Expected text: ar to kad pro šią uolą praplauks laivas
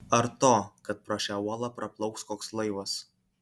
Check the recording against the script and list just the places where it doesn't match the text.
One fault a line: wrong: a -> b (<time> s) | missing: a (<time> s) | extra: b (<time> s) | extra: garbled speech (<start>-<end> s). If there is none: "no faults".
extra: koks (2.3 s)